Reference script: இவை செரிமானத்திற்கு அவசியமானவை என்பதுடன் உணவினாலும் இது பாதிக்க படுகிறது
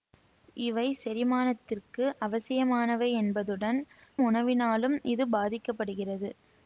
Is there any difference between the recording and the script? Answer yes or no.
no